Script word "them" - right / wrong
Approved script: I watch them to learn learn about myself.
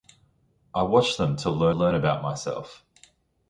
right